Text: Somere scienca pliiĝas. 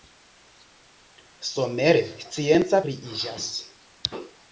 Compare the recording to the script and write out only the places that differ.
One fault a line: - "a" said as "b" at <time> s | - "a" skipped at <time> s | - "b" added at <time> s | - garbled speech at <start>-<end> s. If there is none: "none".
none